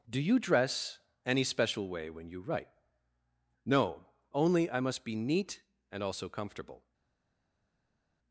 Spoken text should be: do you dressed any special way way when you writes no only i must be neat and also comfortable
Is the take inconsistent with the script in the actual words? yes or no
yes